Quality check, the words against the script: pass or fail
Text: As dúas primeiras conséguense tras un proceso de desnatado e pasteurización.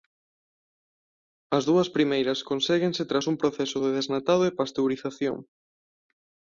pass